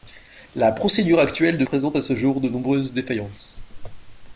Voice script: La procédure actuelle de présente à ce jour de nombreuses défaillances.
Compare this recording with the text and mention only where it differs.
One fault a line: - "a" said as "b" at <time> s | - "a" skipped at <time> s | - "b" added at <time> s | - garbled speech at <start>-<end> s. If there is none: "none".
none